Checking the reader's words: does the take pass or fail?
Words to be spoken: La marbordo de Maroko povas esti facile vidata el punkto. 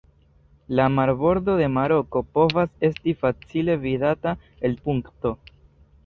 pass